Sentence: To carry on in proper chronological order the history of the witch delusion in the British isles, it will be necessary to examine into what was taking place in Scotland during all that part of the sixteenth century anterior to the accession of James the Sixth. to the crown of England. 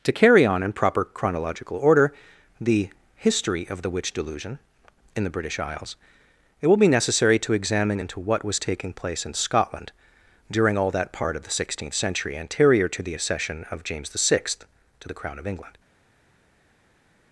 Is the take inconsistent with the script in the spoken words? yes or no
no